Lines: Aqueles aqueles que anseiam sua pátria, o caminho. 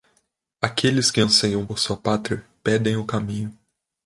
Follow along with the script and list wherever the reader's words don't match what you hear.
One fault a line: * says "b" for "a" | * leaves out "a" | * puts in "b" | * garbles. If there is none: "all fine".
* leaves out "aqueles"
* puts in "por"
* puts in "pedem"